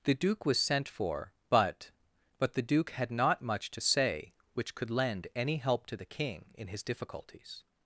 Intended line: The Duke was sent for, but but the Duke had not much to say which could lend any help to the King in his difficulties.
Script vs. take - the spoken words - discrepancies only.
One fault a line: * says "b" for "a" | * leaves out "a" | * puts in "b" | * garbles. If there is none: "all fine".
all fine